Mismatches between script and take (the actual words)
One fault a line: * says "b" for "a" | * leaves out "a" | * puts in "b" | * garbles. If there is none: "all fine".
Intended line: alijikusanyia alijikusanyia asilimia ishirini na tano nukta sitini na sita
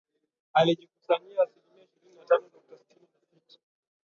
* leaves out "alijikusanyia"